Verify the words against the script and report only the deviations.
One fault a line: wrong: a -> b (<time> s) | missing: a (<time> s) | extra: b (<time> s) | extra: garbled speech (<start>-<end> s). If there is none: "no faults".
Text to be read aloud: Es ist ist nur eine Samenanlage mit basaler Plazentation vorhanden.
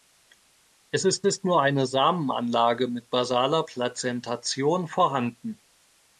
no faults